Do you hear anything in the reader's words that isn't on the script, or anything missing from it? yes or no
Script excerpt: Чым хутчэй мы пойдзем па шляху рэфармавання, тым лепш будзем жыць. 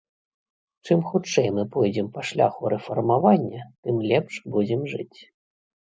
no